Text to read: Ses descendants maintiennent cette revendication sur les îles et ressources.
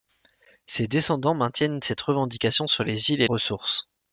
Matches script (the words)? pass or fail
pass